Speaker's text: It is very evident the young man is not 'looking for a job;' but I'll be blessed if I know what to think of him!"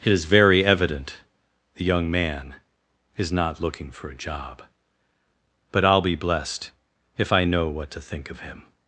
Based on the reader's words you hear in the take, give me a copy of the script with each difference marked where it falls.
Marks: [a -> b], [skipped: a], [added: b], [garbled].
It is very evident the young man is not 'looking for a job;' but I'll be blessed if I know what to think of him!"